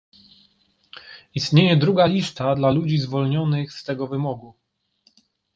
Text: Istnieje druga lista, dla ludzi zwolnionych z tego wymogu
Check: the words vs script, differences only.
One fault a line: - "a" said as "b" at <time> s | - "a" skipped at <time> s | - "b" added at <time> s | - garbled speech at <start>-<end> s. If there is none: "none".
none